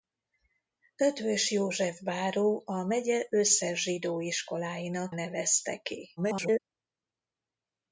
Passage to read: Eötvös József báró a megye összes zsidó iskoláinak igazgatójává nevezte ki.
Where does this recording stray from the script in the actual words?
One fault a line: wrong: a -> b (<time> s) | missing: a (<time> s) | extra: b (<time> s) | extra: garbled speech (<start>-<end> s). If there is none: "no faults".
missing: igazgatójává (5.2 s)
extra: garbled speech (6.2-6.6 s)